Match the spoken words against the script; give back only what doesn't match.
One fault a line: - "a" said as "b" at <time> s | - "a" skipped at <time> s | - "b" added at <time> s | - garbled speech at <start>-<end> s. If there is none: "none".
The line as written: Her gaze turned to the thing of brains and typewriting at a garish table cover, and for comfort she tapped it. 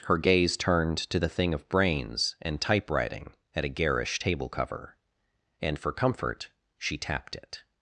none